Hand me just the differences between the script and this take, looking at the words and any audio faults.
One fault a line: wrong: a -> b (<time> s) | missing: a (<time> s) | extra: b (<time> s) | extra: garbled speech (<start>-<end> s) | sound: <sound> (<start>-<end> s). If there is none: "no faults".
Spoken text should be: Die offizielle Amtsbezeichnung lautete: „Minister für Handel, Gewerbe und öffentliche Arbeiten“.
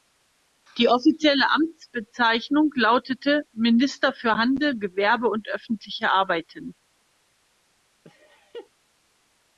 sound: laugh (8.0-8.7 s)